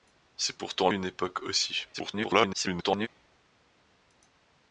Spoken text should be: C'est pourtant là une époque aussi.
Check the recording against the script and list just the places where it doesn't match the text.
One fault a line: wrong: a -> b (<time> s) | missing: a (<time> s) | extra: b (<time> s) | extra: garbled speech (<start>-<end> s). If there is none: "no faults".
missing: là (0.9 s)
extra: garbled speech (1.9-3.1 s)